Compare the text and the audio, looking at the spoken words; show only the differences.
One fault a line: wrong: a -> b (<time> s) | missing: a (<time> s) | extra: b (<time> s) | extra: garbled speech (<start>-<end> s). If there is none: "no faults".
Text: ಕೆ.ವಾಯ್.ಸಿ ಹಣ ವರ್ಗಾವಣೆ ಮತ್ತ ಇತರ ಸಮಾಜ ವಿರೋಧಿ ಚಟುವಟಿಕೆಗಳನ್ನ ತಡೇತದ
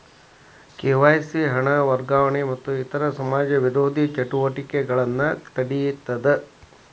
no faults